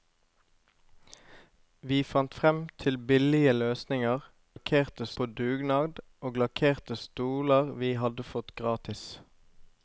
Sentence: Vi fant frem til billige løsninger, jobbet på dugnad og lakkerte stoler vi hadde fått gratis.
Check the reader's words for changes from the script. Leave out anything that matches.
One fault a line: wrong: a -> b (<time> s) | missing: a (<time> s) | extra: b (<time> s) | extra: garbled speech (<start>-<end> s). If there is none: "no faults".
wrong: jobbet -> lakkerte (4.5 s)